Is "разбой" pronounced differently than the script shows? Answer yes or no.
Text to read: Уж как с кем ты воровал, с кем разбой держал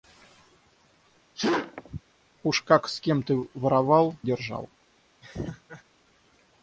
yes